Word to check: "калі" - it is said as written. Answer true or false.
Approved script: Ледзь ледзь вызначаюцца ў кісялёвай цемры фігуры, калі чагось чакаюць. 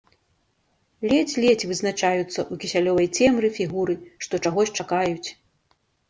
false